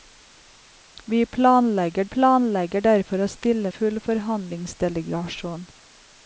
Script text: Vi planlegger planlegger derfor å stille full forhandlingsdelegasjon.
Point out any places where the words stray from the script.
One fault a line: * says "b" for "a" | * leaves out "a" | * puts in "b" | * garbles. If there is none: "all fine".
all fine